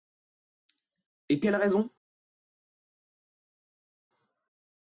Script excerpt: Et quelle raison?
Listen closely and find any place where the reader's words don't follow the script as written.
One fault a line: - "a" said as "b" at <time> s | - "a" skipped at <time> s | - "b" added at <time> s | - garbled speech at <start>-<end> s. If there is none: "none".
none